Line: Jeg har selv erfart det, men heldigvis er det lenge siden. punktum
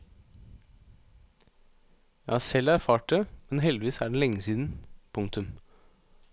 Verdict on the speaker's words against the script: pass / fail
pass